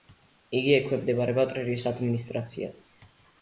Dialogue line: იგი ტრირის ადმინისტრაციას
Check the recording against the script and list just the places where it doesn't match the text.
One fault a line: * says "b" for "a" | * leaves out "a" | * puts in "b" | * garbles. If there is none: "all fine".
* puts in "ექვემდებარება"